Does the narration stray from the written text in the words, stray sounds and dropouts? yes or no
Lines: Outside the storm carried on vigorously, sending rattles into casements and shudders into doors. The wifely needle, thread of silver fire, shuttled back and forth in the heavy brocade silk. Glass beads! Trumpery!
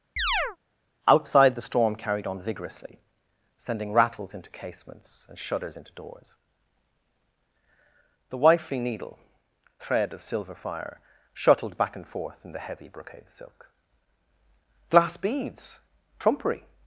yes